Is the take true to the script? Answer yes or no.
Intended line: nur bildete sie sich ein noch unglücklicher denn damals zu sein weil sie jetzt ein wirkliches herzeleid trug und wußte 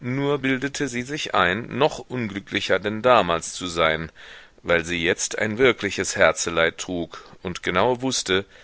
no